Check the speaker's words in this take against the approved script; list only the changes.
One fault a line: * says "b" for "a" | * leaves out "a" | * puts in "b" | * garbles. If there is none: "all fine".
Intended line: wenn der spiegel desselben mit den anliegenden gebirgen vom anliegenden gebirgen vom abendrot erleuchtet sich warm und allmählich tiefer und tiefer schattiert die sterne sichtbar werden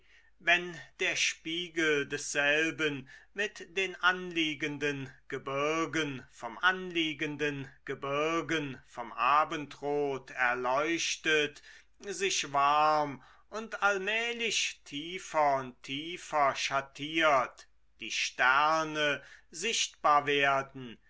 all fine